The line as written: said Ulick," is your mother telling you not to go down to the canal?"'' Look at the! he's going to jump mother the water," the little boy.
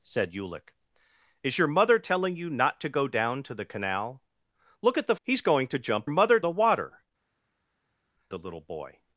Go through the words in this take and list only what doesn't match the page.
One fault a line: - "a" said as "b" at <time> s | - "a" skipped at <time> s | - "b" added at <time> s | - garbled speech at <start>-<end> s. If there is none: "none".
none